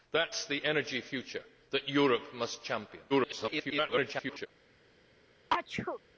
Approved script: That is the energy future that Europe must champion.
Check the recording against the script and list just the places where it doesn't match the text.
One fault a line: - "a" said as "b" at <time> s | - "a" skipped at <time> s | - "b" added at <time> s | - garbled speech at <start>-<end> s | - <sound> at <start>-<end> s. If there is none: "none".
- garbled speech at 3.1-4.5 s
- sneeze at 5.5-6.0 s